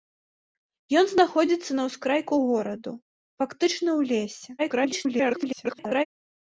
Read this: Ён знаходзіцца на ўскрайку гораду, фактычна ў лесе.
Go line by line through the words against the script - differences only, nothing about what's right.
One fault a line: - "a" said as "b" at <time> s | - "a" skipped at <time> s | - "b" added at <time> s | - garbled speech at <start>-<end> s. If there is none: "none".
- garbled speech at 4.6-6.1 s